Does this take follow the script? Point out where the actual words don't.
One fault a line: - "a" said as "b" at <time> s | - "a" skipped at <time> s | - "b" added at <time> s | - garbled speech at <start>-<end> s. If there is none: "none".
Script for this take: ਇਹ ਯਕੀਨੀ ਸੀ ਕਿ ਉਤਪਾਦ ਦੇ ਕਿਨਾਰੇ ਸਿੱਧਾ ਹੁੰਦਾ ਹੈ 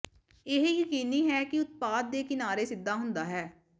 - "ਸੀ" said as "ਹੈ" at 1.3 s